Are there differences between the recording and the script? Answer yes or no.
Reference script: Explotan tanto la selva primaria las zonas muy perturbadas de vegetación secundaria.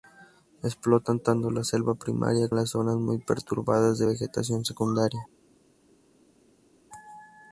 no